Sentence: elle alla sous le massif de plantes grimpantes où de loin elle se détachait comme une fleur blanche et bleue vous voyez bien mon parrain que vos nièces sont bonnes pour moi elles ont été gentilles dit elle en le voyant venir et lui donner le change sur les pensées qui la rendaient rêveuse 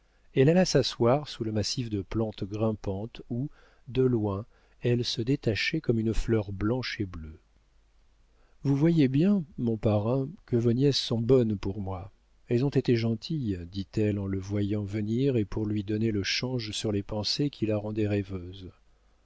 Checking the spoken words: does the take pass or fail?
fail